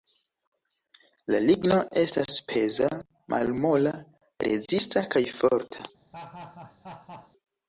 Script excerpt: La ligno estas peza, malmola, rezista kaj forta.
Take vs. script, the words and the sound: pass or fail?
fail